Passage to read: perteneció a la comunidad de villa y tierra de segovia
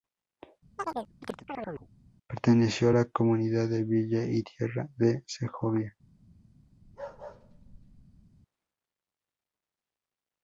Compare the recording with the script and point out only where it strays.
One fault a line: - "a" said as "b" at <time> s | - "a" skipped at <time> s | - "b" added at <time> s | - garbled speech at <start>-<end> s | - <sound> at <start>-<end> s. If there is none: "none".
- chirp at 0.8-1.9 s
- bark at 6.8-8.2 s